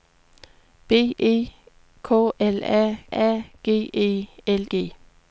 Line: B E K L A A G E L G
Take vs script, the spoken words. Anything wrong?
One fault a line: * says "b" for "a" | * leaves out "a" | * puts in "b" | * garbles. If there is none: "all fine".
all fine